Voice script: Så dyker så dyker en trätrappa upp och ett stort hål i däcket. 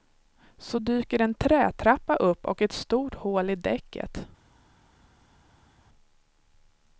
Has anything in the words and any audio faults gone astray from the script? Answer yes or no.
yes